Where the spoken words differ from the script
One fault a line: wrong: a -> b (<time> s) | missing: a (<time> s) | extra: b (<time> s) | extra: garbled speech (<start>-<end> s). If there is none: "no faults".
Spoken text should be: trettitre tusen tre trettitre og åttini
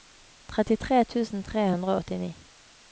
wrong: trettitre -> hundre (1.7 s)